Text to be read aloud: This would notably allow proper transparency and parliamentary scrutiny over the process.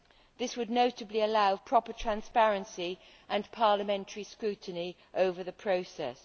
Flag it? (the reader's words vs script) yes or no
no